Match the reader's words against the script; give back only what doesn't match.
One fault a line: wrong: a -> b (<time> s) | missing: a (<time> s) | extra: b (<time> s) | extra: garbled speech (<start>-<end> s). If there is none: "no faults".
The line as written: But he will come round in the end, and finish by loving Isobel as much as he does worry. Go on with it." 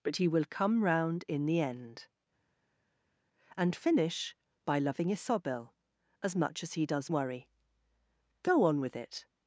no faults